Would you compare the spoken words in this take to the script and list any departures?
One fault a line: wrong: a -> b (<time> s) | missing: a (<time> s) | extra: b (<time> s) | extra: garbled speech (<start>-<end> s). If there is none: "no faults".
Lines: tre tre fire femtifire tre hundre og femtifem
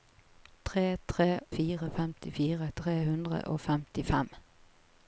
no faults